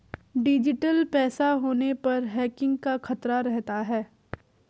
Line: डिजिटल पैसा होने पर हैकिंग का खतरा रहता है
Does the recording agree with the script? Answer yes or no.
yes